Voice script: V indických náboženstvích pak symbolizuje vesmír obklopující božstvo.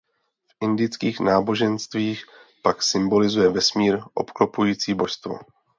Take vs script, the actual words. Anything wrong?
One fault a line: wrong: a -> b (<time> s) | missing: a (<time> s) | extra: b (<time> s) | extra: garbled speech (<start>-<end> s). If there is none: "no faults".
no faults